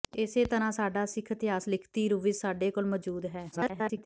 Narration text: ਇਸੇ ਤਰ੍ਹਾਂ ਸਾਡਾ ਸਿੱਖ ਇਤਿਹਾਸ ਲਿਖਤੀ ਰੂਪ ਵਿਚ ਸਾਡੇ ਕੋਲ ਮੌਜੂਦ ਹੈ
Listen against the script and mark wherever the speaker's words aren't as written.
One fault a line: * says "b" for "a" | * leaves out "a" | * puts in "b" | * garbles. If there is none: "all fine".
* garbles